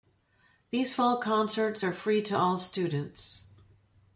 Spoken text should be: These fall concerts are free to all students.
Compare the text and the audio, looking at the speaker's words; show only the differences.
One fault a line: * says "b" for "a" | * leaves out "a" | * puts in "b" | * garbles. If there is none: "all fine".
all fine